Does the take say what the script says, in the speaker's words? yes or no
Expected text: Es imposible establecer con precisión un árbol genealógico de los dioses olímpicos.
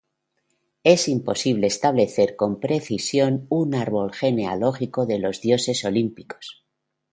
yes